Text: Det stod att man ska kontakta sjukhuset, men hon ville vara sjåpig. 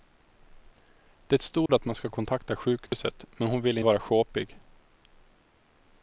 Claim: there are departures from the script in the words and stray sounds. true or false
true